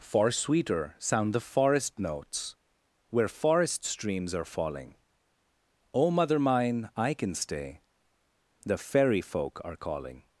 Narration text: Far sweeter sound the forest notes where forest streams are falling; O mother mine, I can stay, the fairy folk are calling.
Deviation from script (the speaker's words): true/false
false